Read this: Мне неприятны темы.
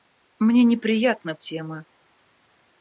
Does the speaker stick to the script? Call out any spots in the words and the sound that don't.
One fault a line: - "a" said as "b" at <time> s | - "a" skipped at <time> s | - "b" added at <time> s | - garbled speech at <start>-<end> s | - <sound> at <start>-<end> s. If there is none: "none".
none